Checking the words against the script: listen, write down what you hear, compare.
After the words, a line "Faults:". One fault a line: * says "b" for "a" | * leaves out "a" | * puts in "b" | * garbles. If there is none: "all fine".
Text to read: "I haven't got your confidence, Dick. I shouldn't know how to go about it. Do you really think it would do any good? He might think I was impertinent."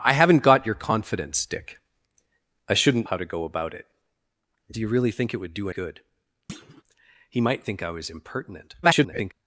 "I haven't got your confidence, Dick. I shouldn't how to go about it. Do you really think it would do good? He might think I was impertinent." [garbled]
Faults:
* leaves out "know"
* leaves out "any"
* garbles